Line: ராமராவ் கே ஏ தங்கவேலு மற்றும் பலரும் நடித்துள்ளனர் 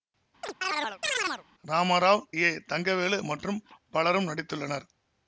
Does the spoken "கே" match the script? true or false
false